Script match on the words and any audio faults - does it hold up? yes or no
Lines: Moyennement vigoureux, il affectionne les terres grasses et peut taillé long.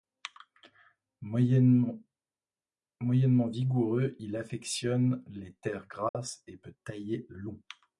no